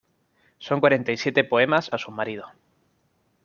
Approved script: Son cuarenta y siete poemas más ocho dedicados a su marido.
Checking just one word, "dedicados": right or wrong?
wrong